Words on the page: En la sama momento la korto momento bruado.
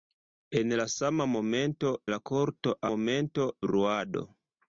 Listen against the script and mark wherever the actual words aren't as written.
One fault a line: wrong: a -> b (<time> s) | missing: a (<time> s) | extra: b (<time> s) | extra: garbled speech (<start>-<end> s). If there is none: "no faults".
no faults